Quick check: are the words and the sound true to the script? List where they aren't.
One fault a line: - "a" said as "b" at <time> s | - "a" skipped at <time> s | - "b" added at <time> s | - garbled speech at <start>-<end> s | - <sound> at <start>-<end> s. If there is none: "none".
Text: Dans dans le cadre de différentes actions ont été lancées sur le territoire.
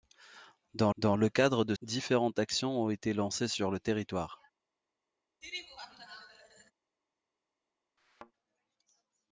- laugh at 5.4-6.7 s
- thud at 8.0-8.3 s